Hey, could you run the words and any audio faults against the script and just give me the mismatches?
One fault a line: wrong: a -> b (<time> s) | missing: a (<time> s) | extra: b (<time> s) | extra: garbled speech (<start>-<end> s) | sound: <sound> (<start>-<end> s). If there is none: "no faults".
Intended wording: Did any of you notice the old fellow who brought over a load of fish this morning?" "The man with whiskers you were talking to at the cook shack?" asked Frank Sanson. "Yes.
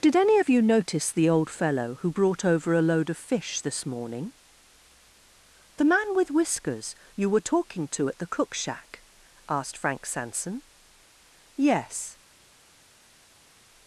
no faults